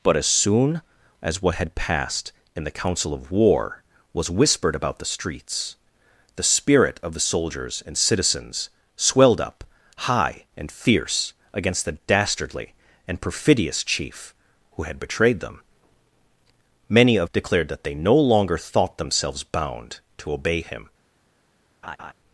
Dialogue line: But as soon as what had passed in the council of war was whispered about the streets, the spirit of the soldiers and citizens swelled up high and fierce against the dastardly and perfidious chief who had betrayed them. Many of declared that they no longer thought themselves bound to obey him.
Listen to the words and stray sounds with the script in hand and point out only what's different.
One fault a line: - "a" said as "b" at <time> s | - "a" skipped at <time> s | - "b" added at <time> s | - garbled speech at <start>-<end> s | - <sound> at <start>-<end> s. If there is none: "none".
- laugh at 21.8-22.1 s